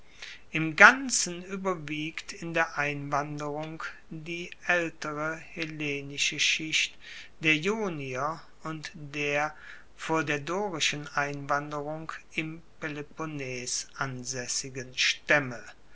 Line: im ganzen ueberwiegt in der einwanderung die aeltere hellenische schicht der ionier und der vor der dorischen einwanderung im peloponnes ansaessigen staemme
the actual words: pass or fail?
pass